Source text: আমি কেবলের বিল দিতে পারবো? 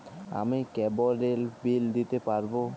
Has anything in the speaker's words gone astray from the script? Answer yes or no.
no